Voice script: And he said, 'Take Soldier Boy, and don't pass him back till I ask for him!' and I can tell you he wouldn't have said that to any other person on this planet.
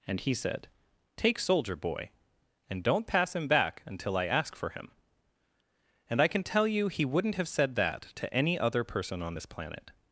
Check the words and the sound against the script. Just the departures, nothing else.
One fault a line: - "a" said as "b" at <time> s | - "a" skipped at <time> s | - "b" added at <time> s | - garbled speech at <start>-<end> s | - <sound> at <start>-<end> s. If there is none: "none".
- "till" said as "until" at 3.9 s